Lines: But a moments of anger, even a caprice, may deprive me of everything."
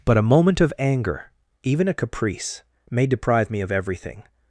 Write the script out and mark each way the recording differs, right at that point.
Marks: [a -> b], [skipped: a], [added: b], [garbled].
But a [moments -> moment] of anger, even a caprice, may deprive me of everything."